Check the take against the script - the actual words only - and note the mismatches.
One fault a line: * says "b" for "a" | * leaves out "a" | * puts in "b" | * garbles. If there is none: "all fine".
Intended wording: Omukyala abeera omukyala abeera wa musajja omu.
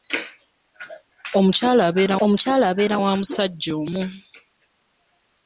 all fine